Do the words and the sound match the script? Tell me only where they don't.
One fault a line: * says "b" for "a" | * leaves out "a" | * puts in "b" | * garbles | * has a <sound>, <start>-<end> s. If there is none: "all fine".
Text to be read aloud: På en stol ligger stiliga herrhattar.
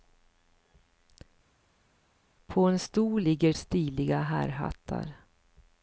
all fine